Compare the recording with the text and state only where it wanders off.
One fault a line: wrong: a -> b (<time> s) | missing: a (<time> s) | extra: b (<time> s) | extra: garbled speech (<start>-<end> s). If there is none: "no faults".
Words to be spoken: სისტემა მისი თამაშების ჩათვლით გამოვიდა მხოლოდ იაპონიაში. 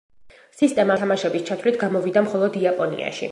missing: მისი (0.9 s)